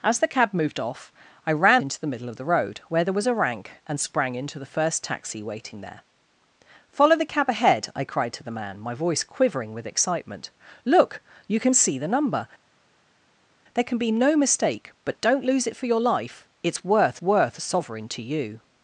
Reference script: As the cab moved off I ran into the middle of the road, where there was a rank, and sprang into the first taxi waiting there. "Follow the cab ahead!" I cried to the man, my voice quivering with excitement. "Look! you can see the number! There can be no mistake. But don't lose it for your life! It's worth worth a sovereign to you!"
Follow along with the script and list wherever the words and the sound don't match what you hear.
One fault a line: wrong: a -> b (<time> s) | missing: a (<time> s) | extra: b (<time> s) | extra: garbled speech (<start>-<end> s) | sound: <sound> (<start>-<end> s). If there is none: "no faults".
no faults